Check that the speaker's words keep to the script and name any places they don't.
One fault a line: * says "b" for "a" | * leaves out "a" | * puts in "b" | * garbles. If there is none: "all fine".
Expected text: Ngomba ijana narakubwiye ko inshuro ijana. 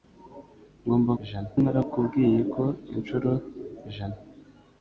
all fine